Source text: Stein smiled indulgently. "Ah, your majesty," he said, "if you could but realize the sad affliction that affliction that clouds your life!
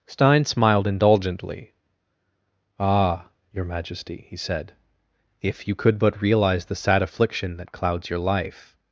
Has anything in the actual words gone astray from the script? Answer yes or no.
yes